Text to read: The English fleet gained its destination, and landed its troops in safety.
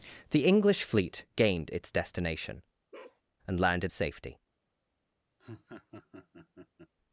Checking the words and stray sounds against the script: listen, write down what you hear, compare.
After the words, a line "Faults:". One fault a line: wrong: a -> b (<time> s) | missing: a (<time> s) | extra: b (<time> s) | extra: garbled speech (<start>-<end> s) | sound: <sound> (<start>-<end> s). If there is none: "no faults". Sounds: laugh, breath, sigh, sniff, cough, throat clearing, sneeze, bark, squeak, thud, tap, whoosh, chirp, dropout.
The English fleet gained its destination, and landed safety.
Faults:
sound: bark (2.9-3.2 s)
missing: its troops in (3.9 s)
sound: laugh (5.4-6.9 s)